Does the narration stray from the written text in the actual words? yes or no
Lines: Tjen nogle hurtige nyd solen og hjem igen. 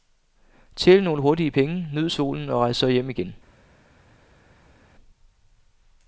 yes